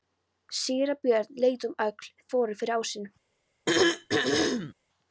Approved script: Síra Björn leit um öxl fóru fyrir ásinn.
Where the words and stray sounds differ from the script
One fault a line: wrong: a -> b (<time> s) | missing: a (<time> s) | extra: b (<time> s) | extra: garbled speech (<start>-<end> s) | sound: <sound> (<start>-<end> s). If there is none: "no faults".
sound: throat clearing (3.7-4.7 s)